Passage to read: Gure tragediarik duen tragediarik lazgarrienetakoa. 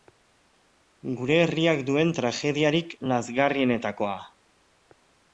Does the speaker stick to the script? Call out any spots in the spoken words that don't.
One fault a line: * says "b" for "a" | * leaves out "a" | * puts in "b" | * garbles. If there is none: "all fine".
* says "herriak" for "tragediarik"